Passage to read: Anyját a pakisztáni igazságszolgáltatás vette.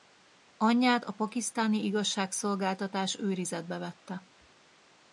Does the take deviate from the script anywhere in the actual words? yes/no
yes